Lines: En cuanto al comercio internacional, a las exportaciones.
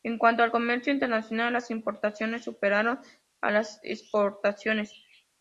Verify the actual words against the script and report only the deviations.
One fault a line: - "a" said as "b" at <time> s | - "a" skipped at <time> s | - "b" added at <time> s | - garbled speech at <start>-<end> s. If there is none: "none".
- "las importaciones superaron" added at 1.5 s